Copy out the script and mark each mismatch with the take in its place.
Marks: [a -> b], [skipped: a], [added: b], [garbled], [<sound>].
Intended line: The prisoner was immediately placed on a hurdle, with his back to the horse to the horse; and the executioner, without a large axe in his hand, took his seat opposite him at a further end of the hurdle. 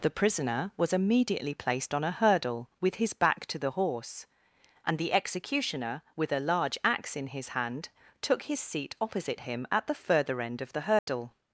The prisoner was immediately placed on a hurdle, with his back to the horse [skipped: to the horse;] and the executioner, [without -> with] a large axe in his hand, took his seat opposite him at [a -> the] further end of the hurdle. [dropout]